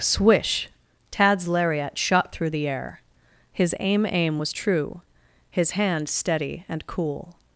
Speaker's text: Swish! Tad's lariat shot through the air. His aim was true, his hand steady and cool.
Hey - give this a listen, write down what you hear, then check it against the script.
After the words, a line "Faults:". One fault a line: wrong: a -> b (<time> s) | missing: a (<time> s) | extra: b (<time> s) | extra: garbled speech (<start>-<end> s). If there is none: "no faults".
Swish! Tad's lariat shot through the air. His aim aim was true, his hand steady and cool.
Faults:
extra: aim (4.1 s)